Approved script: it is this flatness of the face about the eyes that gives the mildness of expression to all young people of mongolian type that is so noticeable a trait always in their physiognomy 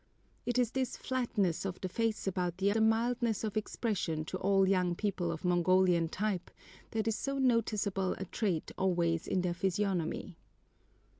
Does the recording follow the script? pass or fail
fail